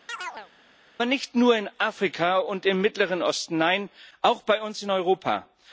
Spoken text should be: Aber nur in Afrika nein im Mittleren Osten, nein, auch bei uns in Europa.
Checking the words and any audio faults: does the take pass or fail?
fail